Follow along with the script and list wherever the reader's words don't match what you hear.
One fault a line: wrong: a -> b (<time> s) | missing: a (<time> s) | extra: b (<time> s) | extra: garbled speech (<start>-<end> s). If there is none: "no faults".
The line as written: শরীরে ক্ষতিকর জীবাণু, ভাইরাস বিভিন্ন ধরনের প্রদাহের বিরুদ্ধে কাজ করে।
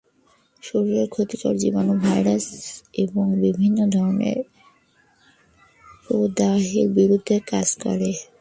extra: এবং (3.0 s)